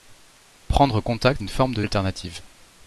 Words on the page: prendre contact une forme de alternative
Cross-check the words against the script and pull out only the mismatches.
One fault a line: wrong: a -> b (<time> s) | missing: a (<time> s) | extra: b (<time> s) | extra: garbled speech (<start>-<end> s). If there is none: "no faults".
no faults